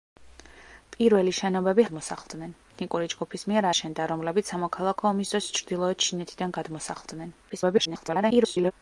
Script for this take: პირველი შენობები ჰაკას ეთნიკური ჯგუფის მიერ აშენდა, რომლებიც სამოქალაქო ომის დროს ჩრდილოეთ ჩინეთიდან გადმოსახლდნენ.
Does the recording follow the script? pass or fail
fail